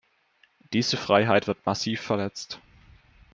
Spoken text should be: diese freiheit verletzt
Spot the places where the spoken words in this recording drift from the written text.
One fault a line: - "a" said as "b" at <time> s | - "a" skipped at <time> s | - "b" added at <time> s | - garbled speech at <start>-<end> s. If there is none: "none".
- "wird massiv" added at 1.4 s